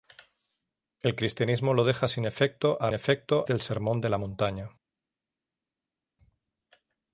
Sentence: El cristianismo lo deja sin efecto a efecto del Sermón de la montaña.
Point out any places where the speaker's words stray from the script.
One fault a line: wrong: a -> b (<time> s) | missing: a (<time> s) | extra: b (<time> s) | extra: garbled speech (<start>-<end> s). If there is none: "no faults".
no faults